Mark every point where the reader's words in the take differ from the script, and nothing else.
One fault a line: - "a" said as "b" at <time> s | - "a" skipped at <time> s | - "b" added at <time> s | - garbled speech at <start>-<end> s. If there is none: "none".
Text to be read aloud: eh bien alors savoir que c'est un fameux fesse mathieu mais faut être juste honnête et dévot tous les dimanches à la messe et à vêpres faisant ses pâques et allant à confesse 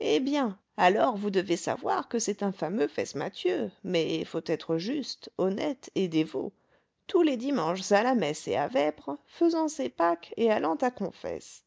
- "vous devez" added at 1.1 s